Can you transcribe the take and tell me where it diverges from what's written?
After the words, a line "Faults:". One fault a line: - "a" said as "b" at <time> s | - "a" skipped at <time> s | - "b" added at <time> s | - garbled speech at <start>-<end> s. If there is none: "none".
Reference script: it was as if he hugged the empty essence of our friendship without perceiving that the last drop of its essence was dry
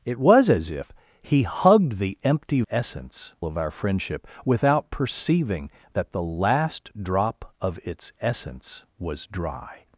it was as if he hugged the empty essence of our friendship without perceiving that the last drop of its essence was dry
Faults:
none